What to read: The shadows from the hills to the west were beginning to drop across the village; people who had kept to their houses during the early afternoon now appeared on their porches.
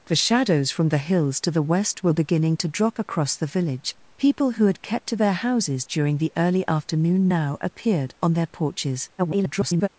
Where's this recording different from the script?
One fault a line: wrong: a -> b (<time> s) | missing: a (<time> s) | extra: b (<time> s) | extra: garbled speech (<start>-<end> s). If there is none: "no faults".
extra: garbled speech (9.2-9.9 s)